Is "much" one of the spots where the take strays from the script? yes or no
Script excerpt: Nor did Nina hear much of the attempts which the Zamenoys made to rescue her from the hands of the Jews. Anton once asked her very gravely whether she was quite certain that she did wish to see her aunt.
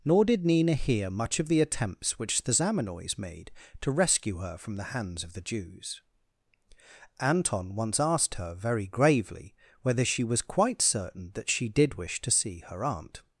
no